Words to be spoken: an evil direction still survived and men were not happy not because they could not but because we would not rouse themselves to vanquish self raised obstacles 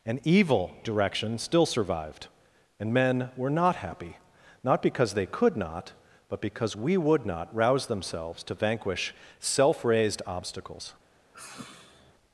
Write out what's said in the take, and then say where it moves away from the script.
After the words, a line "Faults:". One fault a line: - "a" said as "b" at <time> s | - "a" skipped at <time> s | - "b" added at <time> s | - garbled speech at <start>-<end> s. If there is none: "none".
an evil direction still survived and men were not happy not because they could not but because we would not rouse themselves to vanquish self raised obstacles
Faults:
none